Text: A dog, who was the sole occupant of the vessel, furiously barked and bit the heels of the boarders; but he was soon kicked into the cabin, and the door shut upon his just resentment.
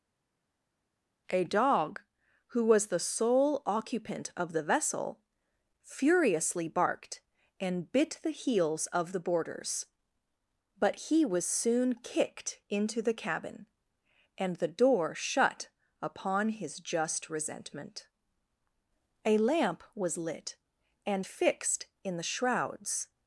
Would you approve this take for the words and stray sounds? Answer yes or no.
no